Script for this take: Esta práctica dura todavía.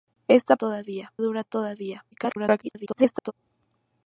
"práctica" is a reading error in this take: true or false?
true